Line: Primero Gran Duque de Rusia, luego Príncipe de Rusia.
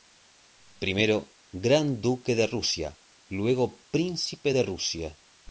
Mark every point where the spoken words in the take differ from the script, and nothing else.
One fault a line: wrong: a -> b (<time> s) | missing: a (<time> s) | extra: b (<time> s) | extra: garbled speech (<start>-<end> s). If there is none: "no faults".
no faults